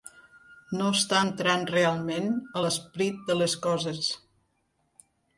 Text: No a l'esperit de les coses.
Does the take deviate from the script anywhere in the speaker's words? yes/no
yes